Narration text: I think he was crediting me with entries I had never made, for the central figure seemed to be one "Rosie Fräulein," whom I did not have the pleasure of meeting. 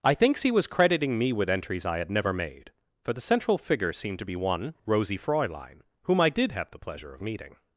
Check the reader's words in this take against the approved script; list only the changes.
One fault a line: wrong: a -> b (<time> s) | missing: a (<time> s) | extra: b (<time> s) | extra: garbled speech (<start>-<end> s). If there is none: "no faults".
wrong: think -> thinks (0.1 s)
missing: not (6.5 s)